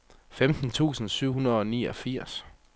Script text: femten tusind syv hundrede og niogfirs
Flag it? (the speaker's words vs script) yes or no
no